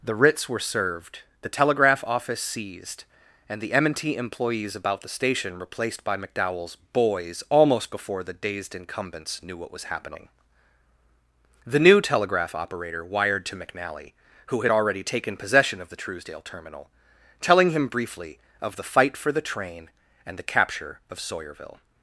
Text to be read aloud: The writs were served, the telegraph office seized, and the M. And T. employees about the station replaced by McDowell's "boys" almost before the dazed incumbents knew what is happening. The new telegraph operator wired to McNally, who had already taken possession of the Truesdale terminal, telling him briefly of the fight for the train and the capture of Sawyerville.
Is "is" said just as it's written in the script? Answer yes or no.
no